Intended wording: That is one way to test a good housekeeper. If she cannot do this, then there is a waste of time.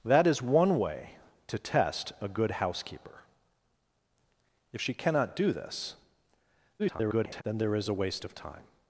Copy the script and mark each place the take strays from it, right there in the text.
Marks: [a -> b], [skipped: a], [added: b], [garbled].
That is one way to test a good housekeeper. If she cannot do this, [garbled] then there is a waste of time.